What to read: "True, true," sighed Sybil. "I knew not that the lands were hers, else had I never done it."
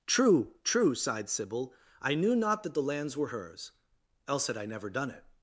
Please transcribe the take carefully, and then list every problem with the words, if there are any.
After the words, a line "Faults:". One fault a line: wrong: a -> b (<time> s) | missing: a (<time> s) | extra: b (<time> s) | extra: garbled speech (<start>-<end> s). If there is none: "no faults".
"True, true," sighed Sybil. "I knew not that the lands were hers, else had I never done it."
Faults:
no faults